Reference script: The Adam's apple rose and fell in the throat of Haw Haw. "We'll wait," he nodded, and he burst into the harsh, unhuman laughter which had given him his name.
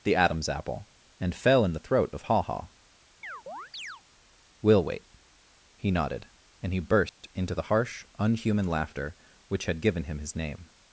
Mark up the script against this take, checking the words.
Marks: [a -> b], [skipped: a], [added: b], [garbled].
The Adam's apple [skipped: rose] and fell in the throat of Haw Haw. "We'll wait," he nodded, and he burst into the harsh, unhuman laughter which had given him his name.